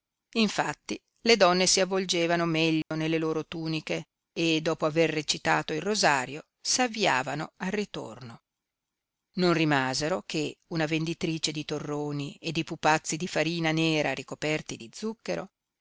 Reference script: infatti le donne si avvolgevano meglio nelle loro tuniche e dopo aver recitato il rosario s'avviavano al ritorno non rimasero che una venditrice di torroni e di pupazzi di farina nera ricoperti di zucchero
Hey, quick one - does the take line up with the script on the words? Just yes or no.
yes